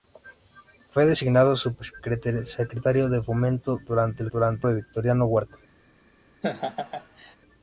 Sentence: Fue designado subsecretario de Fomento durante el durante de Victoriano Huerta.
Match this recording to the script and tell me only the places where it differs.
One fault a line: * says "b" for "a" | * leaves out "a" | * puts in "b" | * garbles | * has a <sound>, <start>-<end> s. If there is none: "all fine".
* has a laugh, 6.4-7.4 s